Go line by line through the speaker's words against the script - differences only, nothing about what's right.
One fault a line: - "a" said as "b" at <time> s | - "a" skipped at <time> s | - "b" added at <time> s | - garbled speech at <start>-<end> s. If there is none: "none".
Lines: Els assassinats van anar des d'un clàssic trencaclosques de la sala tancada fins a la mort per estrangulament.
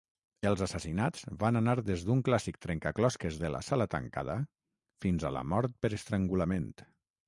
none